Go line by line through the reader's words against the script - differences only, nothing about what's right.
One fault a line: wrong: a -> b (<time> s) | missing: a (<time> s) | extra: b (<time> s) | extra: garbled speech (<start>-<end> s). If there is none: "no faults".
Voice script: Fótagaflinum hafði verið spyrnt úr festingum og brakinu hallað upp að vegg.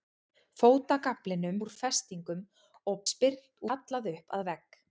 missing: hafði verið spyrnt (1.6 s)
wrong: brakinu -> spyrnt (3.0 s)